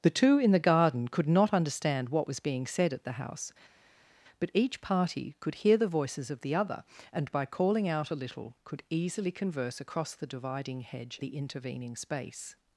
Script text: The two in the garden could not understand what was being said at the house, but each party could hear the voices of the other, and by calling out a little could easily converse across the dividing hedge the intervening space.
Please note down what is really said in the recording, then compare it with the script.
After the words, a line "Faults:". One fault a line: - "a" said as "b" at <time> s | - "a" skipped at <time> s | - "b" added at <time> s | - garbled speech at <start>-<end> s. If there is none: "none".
The two in the garden could not understand what was being said at the house, but each party could hear the voices of the other, and by calling out a little could easily converse across the dividing hedge the intervening space.
Faults:
none